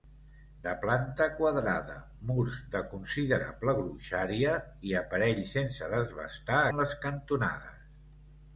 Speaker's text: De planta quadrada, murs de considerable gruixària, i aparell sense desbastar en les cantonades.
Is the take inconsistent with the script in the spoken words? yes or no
no